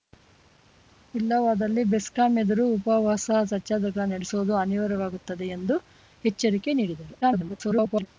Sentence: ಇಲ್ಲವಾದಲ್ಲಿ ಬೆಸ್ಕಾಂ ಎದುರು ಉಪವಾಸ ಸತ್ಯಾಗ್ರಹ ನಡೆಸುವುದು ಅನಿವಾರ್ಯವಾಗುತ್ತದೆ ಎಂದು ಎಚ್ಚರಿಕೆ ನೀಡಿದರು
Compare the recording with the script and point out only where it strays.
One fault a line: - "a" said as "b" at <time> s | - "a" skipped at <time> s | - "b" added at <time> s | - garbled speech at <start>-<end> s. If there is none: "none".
- garbled speech at 7.2-8.1 s